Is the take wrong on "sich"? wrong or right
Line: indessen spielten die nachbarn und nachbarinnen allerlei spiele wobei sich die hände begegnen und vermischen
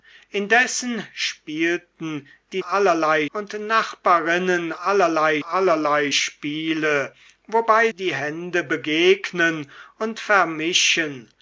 wrong